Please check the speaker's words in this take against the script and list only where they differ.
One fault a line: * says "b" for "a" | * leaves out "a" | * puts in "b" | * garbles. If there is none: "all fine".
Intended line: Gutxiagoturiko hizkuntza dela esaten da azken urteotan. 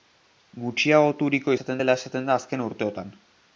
* says "esaten" for "hizkuntza"